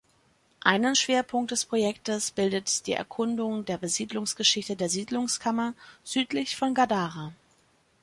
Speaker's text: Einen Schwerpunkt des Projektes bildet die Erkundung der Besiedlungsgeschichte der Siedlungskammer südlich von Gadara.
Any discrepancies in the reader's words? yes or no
no